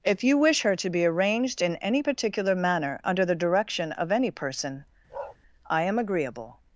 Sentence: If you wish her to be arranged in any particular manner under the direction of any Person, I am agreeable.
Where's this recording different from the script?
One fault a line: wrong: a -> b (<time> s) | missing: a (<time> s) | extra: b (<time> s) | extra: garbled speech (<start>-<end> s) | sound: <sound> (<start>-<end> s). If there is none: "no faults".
sound: bark (5.1-5.4 s)